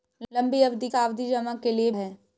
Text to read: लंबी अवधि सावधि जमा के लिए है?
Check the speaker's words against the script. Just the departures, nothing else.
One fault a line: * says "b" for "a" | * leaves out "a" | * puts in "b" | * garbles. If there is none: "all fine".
all fine